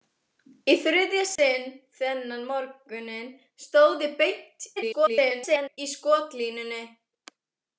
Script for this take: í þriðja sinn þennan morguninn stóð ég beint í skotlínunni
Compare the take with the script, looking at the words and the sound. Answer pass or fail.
fail